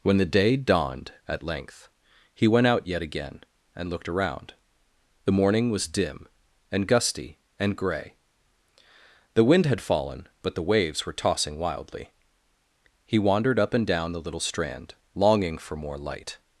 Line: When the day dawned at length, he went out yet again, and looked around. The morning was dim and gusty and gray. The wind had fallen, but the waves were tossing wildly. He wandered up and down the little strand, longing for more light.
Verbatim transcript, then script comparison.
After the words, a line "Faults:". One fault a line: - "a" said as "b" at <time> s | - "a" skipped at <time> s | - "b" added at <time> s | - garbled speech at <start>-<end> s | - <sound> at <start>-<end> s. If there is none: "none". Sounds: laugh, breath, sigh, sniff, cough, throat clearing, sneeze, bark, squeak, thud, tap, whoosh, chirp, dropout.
When the day dawned at length, he went out yet again, and looked around. The morning was dim and gusty and gray. The wind had fallen, but the waves were tossing wildly. He wandered up and down the little strand, longing for more light.
Faults:
none